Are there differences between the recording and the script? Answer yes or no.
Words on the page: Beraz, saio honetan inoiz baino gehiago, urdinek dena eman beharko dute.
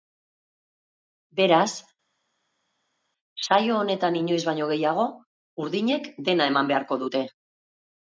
no